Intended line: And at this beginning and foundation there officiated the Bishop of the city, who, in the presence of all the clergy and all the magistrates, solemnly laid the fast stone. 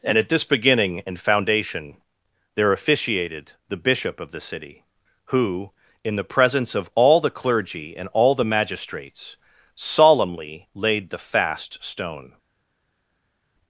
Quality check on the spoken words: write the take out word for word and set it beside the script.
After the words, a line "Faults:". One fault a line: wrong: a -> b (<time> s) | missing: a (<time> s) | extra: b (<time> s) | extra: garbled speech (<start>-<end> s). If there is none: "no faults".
And at this beginning and foundation there officiated the Bishop of the city, who, in the presence of all the clergy and all the magistrates, solemnly laid the fast stone.
Faults:
no faults